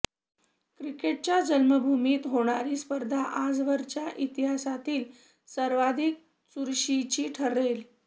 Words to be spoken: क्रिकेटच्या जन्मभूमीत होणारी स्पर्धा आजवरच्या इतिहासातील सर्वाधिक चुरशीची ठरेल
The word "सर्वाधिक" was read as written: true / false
true